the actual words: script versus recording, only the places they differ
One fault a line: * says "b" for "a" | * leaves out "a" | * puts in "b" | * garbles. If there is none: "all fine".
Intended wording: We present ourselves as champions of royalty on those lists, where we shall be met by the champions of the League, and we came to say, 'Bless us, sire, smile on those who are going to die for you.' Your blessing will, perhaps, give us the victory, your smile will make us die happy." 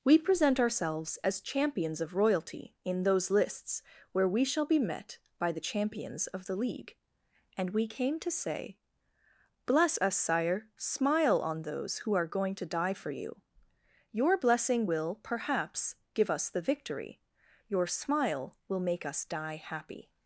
* says "in" for "on"